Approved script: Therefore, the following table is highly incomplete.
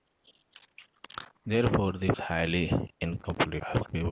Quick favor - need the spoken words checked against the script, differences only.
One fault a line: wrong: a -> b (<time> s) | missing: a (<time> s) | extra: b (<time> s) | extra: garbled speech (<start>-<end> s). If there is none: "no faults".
missing: following table is (2.1 s)
extra: garbled speech (3.6-4.1 s)